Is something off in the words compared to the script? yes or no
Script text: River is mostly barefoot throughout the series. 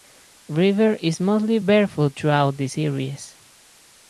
no